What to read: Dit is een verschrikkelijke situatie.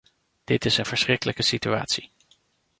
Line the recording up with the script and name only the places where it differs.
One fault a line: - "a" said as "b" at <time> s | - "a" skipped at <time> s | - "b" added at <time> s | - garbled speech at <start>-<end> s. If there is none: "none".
none